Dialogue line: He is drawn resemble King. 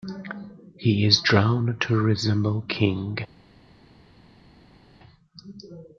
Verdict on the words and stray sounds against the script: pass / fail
fail